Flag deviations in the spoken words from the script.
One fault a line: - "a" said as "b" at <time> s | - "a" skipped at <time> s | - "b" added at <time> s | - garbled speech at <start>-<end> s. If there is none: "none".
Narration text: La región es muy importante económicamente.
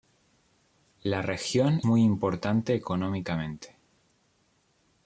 - "es" skipped at 1.8 s